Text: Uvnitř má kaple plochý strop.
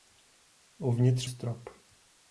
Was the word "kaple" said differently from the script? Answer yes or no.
yes